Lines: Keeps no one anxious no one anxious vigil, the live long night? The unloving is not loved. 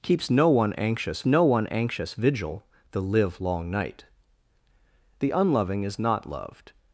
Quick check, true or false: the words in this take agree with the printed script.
true